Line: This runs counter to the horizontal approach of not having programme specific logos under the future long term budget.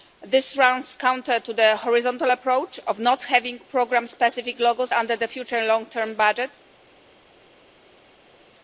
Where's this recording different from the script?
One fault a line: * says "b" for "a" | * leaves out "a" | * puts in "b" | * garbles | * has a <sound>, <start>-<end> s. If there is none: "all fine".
all fine